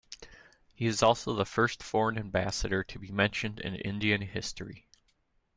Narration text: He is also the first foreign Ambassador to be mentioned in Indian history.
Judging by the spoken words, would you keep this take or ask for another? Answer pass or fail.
pass